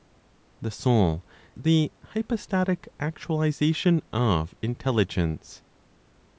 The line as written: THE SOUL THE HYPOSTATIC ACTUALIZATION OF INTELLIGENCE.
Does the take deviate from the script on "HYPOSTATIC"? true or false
false